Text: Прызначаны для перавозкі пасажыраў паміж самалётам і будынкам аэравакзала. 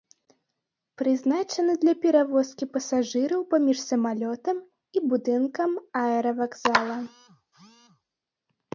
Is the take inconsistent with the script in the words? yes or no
no